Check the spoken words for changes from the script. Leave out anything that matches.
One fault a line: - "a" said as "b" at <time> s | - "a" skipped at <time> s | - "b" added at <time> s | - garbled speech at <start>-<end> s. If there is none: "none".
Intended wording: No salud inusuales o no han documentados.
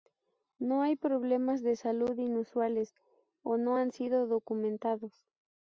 - "hay problemas de" added at 0.8 s
- "sido" added at 3.9 s